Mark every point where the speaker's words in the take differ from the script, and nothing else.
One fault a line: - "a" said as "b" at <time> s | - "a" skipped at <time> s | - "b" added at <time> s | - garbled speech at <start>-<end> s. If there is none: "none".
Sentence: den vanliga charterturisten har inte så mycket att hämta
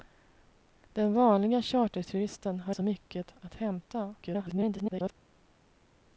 - "inte" skipped at 2.8 s
- garbled speech at 4.2-5.1 s